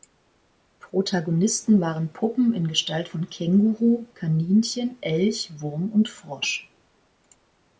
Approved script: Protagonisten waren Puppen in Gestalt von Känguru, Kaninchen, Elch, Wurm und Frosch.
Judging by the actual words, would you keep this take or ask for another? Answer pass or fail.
pass